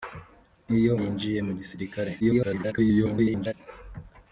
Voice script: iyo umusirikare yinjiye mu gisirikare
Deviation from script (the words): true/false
true